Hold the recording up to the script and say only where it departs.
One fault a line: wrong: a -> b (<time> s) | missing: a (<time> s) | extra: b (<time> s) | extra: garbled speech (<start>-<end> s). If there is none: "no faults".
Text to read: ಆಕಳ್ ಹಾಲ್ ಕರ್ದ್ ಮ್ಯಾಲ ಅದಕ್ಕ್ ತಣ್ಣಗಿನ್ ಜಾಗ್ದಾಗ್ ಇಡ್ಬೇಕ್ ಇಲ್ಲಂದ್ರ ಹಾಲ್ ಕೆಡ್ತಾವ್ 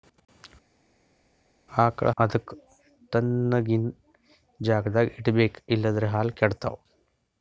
missing: ಹಾಲ್ ಕರ್ದ್ ಮ್ಯಾಲ (2.1 s)